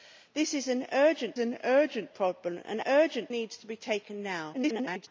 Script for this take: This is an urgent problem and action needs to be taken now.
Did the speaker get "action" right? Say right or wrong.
wrong